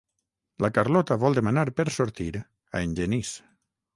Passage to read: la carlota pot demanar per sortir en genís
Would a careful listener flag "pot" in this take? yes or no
yes